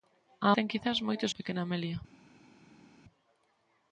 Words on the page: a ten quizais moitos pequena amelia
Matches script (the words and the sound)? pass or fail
pass